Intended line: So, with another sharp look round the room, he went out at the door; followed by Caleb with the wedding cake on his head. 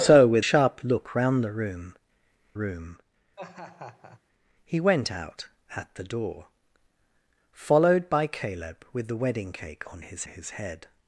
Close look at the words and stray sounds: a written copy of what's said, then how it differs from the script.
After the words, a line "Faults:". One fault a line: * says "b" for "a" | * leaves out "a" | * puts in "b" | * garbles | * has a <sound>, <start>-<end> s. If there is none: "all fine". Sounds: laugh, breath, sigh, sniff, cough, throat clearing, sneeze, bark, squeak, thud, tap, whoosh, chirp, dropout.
So, with sharp look round the room room, he went out at the door; followed by Caleb with the wedding cake on his his head.
Faults:
* leaves out "another"
* puts in "room"
* has a laugh, 3.4-4.2 s
* puts in "his"